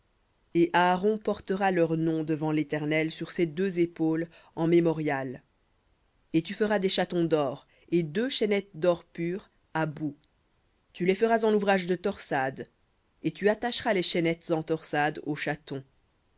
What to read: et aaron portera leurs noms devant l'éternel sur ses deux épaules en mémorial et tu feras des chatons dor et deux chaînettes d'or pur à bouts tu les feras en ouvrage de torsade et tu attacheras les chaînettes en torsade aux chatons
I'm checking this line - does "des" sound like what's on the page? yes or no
yes